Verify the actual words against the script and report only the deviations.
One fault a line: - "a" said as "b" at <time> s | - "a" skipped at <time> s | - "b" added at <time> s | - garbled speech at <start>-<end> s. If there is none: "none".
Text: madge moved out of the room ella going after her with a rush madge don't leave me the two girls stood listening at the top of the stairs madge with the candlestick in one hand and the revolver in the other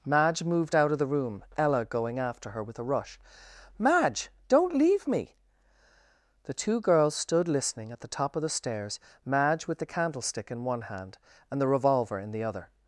none